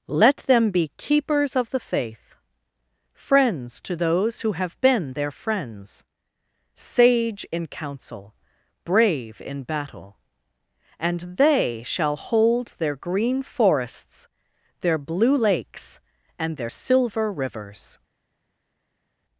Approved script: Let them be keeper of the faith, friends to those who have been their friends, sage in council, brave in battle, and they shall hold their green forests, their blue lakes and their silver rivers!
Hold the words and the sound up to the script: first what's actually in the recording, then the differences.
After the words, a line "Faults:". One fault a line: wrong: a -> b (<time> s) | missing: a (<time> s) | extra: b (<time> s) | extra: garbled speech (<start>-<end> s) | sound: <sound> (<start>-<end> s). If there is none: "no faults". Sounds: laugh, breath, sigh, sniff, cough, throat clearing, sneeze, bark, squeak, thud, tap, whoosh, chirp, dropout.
Let them be keepers of the faith, friends to those who have been their friends, sage in council, brave in battle, and they shall hold their green forests, their blue lakes and their silver rivers!
Faults:
wrong: keeper -> keepers (1.0 s)